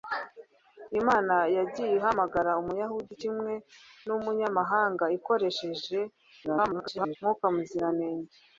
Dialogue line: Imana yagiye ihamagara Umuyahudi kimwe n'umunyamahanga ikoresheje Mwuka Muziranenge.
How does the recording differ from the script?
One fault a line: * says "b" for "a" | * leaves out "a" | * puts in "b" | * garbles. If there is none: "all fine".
* garbles